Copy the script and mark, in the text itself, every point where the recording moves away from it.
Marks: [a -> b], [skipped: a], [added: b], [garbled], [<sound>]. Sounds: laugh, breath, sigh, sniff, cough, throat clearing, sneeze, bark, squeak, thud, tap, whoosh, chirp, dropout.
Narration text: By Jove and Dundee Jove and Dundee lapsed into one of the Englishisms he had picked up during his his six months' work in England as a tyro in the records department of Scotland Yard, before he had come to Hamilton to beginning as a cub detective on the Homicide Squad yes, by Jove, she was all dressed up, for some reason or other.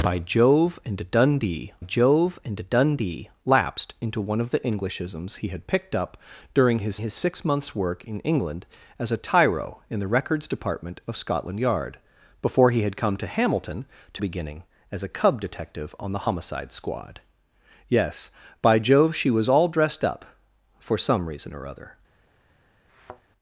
By Jove and Dundee Jove and Dundee lapsed into one of the Englishisms he had picked up during his his six months' work in England as a tyro in the records department of Scotland Yard, before he had come to Hamilton to beginning as a cub detective on the Homicide Squad yes, by Jove, she was all dressed up, for some reason or other. [thud]